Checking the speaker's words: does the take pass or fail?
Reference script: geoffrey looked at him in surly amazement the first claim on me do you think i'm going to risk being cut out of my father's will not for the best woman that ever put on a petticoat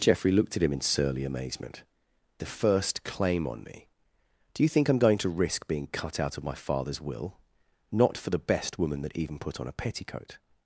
fail